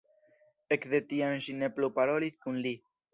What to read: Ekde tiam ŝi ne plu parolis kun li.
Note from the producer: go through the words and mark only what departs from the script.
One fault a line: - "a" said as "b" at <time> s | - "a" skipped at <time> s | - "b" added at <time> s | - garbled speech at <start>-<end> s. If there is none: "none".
none